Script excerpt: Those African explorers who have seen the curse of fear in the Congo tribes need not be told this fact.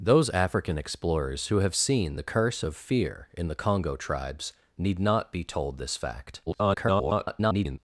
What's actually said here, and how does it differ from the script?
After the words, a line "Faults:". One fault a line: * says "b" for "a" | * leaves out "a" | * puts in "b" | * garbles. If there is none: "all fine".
Those African explorers who have seen the curse of fear in the Congo tribes need not be told this fact. [garbled]
Faults:
* garbles